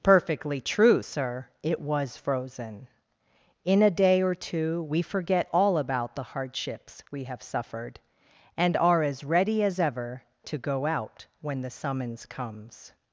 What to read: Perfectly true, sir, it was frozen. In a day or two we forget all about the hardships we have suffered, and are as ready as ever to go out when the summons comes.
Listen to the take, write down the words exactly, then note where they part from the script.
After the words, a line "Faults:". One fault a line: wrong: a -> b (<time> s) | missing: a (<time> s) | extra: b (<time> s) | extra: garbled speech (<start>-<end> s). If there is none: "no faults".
Perfectly true, sir, it was frozen. In a day or two we forget all about the hardships we have suffered, and are as ready as ever to go out when the summons comes.
Faults:
no faults